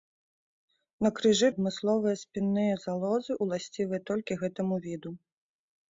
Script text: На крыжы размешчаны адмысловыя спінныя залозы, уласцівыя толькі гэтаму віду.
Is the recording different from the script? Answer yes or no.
yes